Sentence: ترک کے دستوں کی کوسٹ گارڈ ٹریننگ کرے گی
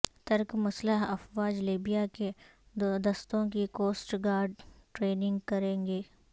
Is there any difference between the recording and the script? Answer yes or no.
yes